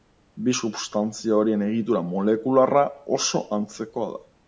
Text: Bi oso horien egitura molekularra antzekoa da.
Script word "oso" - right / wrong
wrong